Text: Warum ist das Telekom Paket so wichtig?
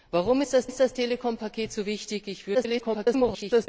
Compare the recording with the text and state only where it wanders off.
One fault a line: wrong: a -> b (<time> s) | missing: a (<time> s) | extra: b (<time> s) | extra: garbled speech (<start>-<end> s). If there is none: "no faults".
extra: ist das (0.6 s)
extra: garbled speech (2.5-3.7 s)